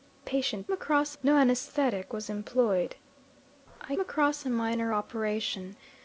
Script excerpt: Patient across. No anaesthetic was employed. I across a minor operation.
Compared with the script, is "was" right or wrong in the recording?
right